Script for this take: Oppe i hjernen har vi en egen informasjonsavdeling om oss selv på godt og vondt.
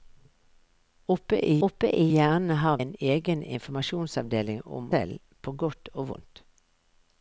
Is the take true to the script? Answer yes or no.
no